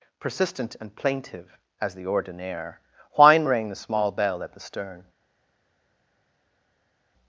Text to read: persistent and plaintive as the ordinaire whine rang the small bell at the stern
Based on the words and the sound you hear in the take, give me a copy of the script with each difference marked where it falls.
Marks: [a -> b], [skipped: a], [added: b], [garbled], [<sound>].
persistent and plaintive as the ordinaire whine rang the small bell at the stern